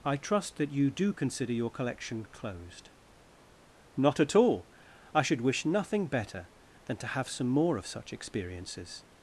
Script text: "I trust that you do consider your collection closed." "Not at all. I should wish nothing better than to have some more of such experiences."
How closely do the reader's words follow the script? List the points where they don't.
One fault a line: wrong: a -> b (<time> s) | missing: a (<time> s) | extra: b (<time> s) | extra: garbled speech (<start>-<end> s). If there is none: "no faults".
no faults